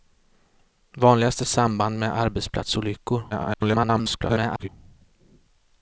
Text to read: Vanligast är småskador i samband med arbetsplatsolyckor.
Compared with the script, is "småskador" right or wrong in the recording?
wrong